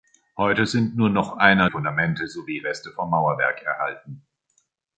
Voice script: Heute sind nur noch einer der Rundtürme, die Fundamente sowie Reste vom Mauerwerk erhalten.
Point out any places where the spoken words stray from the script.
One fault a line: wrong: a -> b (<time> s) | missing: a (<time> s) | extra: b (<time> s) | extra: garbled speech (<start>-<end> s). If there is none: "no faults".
missing: der Rundtürme die (1.7 s)